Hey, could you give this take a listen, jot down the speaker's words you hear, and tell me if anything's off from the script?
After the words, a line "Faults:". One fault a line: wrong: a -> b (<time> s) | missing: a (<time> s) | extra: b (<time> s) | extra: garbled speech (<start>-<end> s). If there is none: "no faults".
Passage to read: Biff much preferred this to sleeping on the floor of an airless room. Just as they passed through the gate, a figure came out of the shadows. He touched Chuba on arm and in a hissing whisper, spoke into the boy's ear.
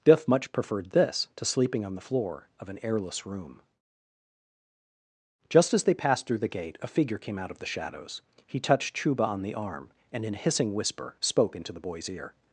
Biff much preferred this to sleeping on the floor of an airless room. Just as they passed through the gate, a figure came out of the shadows. He touched Chuba on the arm and in a hissing whisper, spoke into the boy's ear.
Faults:
extra: the (9.4 s)